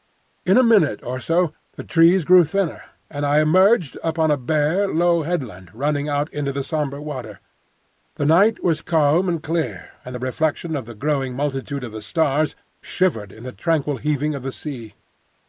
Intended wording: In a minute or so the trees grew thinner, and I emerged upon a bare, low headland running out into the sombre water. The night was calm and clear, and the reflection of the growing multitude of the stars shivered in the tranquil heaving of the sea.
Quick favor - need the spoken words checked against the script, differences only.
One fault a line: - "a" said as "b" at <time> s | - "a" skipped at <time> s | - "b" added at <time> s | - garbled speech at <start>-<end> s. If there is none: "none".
none